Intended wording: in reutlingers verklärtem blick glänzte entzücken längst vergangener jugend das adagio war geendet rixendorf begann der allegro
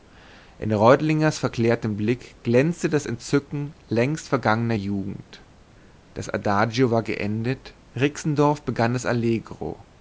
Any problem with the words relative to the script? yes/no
yes